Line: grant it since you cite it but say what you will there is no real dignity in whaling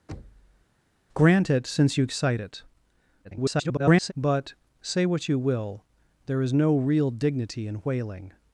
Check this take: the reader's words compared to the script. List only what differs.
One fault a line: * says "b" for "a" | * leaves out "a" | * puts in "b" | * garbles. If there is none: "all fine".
* garbles